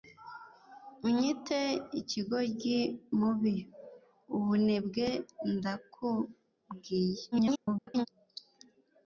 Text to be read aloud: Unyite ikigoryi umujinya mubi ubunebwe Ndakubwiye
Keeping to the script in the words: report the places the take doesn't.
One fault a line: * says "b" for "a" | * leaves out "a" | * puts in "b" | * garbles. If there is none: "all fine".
* leaves out "umujinya"
* garbles